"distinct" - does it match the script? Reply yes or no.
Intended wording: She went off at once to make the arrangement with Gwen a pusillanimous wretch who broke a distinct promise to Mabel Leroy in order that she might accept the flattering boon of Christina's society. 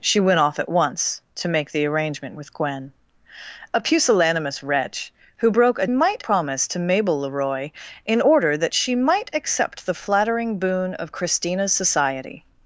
no